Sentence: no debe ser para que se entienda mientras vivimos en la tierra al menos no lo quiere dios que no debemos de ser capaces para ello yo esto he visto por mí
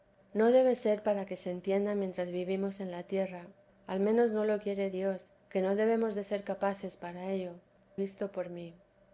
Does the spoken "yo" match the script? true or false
false